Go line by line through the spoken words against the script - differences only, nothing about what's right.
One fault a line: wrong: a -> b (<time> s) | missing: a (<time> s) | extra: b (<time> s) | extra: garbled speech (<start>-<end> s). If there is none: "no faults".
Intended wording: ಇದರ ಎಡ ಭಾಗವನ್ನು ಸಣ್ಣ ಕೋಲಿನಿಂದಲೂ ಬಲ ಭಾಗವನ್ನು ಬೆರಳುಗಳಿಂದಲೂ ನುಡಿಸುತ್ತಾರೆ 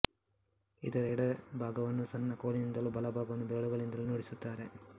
no faults